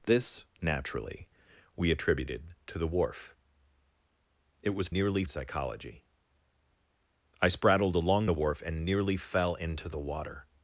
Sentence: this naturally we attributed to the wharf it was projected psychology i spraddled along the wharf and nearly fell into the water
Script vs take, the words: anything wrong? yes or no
yes